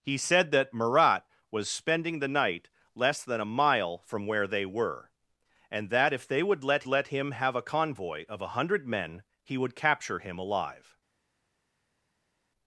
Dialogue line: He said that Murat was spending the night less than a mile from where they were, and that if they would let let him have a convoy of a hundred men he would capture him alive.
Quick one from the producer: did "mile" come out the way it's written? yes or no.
yes